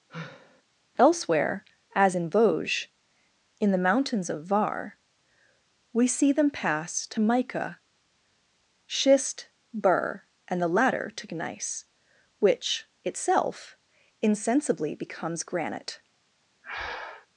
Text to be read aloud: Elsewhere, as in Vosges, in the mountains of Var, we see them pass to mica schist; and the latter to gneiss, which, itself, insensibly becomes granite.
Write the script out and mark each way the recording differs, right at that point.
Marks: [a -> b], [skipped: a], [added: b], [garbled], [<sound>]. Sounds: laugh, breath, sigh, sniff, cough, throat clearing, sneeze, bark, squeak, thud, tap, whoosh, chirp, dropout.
[sigh] Elsewhere, as in Vosges, in the mountains of Var, we see them pass to mica schist; [added: burr] and the latter to gneiss, which, itself, insensibly becomes granite. [breath]